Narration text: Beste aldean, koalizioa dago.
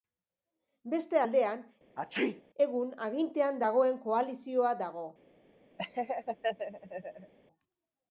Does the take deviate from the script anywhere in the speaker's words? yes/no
yes